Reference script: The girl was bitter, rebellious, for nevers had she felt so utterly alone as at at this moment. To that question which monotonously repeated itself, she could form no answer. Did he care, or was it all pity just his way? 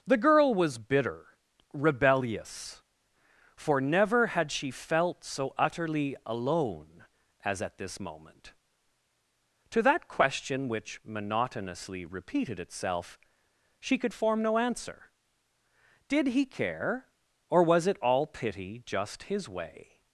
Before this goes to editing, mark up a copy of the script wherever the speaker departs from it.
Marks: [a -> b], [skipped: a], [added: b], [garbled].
The girl was bitter, rebellious, for [nevers -> never] had she felt so utterly alone as at [skipped: at] this moment. To that question which monotonously repeated itself, she could form no answer. Did he care, or was it all pity just his way?